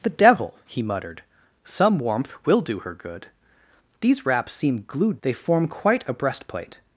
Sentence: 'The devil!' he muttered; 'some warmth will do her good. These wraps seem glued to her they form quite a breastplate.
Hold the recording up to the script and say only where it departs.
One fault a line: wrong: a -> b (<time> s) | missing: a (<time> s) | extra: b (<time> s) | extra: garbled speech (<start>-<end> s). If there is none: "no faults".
missing: to her (5.2 s)